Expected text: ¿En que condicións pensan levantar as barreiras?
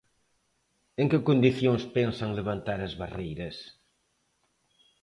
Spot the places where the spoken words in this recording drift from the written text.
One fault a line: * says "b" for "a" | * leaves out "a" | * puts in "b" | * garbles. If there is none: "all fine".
all fine